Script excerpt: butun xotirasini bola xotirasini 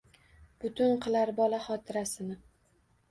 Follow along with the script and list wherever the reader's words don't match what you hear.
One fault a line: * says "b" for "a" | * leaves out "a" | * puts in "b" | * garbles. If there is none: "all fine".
* says "qilar" for "xotirasini"